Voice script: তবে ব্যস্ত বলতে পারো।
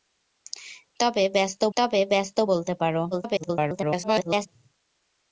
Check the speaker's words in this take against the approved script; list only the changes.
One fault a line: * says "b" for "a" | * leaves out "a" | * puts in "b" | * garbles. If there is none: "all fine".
* puts in "তবে ব্যস্ত"
* garbles